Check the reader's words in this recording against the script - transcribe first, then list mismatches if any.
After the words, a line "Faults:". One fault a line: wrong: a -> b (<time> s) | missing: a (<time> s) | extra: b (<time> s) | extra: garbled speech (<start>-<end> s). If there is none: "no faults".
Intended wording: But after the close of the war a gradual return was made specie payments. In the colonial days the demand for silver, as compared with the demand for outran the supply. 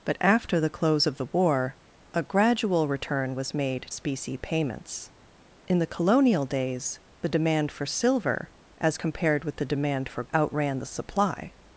But after the close of the war a gradual return was made specie payments. In the colonial days the demand for silver, as compared with the demand for outran the supply.
Faults:
no faults